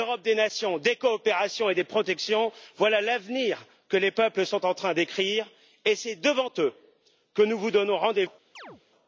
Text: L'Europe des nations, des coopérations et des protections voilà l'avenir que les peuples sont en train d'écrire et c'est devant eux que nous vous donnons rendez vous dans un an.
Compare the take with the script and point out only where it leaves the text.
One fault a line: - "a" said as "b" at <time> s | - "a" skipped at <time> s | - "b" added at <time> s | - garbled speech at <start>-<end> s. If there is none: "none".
- "vous dans un" skipped at 8.2 s